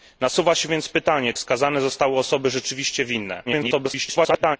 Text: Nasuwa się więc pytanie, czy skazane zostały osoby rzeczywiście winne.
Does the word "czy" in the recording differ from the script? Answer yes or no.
yes